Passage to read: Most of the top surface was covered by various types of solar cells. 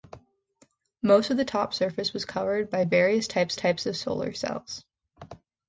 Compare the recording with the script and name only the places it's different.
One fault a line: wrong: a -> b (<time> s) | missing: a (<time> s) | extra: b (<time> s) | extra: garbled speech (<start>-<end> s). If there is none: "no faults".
extra: types (3.6 s)